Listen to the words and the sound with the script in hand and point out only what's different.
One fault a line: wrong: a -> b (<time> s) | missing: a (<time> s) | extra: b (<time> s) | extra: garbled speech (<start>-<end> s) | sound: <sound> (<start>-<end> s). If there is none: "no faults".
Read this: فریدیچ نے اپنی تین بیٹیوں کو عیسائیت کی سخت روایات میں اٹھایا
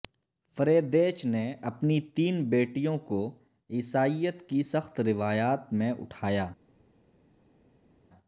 no faults